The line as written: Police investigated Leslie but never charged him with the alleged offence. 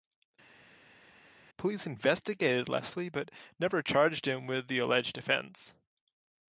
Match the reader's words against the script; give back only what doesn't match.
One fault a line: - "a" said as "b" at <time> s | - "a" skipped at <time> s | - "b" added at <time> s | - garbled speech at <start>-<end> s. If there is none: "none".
none